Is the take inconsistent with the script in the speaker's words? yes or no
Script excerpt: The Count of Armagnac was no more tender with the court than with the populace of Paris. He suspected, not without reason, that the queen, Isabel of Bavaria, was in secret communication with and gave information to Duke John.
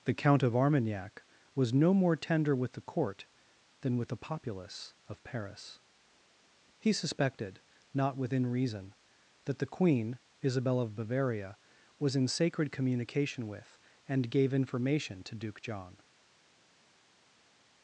yes